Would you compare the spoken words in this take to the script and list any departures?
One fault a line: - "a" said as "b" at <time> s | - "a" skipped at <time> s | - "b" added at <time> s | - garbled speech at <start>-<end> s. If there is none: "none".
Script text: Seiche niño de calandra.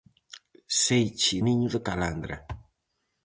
none